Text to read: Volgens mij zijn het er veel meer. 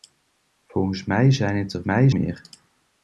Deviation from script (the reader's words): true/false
true